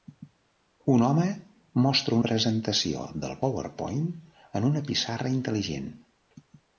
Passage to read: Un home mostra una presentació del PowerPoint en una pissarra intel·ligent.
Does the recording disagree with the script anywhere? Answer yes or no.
yes